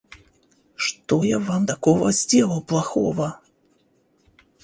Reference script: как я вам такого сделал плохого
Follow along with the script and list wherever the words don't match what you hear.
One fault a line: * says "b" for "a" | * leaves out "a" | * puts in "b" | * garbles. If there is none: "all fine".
* says "что" for "как"